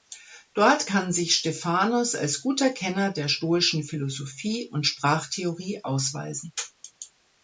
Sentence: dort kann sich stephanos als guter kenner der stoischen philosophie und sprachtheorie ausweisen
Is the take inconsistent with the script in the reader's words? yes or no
no